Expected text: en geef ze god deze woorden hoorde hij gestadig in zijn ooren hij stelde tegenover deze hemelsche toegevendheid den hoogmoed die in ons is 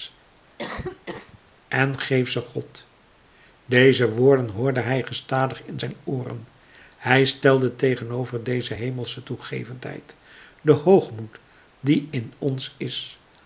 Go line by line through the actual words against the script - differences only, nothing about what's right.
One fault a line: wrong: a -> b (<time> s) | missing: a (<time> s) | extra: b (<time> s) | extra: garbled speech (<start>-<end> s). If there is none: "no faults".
no faults